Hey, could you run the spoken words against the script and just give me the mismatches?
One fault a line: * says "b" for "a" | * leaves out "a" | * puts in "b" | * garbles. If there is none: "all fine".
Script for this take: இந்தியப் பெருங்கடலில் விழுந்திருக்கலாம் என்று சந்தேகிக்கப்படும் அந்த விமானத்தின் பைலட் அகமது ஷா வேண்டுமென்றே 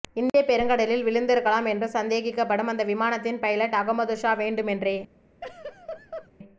all fine